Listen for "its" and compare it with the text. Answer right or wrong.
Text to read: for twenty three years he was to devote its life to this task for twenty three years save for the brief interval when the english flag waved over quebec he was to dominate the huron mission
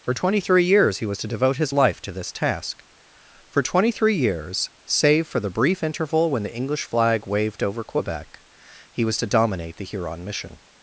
wrong